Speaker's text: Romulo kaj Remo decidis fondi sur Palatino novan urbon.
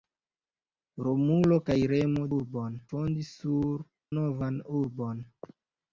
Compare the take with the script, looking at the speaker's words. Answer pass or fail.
fail